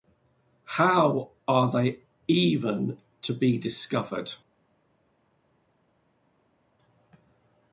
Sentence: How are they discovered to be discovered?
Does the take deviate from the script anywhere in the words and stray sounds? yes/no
yes